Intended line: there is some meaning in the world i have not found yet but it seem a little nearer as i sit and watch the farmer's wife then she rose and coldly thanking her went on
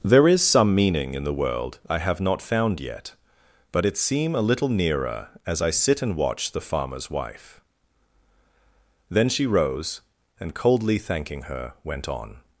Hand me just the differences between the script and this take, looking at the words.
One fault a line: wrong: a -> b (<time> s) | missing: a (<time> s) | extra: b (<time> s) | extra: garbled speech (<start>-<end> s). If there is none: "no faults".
no faults